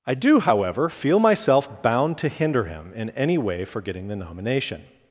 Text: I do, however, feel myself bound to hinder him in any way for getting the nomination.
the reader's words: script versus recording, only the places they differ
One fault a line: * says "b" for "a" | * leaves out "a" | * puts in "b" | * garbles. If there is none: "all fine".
all fine